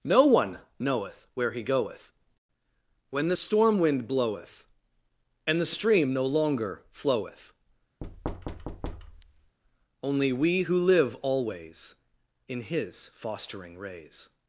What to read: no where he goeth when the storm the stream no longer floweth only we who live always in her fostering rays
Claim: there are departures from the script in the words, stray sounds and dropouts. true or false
true